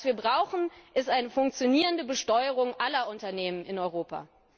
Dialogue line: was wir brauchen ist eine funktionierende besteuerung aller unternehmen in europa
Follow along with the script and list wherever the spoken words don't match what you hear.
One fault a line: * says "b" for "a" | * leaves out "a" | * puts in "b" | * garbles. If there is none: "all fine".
all fine